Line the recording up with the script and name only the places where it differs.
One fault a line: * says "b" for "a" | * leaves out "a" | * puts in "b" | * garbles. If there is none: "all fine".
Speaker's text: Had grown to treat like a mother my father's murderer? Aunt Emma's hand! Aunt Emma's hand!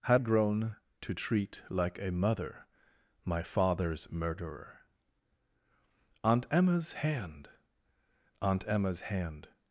all fine